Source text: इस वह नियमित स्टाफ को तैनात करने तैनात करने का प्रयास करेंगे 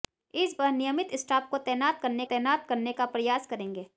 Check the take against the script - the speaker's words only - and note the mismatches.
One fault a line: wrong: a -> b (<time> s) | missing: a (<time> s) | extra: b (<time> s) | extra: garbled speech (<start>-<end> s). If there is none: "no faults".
no faults